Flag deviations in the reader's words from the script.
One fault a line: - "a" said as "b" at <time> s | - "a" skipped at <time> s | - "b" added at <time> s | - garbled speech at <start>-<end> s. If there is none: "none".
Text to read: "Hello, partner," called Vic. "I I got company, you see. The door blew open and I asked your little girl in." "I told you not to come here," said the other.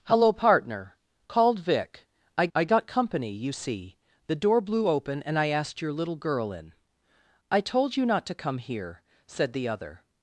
none